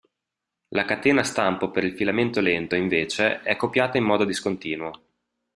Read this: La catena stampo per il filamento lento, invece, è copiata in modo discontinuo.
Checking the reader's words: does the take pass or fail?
pass